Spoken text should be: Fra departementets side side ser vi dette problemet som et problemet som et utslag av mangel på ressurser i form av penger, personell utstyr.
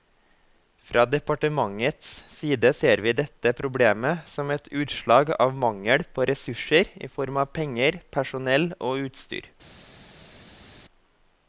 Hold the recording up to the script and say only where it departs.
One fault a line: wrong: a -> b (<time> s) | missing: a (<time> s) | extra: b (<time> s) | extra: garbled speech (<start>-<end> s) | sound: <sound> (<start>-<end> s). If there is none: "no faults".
missing: side (2.7 s)
missing: problemet som et (4.7 s)
extra: og (8.9 s)